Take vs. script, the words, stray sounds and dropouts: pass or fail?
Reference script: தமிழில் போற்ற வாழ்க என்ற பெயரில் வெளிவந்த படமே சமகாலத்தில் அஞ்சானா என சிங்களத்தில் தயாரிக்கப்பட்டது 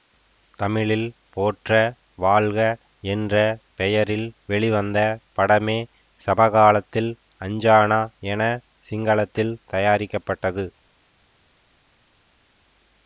pass